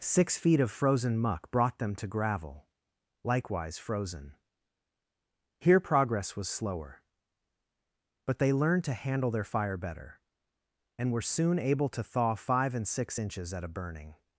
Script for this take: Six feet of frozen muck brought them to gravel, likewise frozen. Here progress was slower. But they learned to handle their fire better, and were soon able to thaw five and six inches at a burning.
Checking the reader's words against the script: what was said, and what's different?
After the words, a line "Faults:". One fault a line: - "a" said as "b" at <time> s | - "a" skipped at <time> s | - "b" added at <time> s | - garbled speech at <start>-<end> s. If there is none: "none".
Six feet of frozen muck brought them to gravel, likewise frozen. Here progress was slower. But they learned to handle their fire better, and were soon able to thaw five and six inches at a burning.
Faults:
none